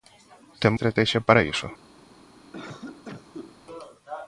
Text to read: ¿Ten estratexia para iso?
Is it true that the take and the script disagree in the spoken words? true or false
false